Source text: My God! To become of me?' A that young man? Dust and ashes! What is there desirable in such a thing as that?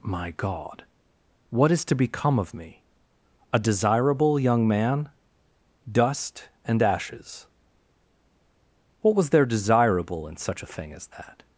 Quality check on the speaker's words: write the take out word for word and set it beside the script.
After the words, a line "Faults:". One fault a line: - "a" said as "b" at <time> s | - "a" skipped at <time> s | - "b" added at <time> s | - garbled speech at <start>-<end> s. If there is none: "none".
My God! What is to become of me?' A desirable young man? Dust and ashes! What was there desirable in such a thing as that?
Faults:
- "What is" added at 1.5 s
- "that" said as "desirable" at 3.6 s
- "is" said as "was" at 9.2 s